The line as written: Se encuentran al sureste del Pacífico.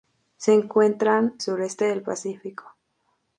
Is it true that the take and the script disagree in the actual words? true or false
true